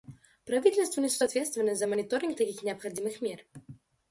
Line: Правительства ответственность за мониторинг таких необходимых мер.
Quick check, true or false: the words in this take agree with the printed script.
false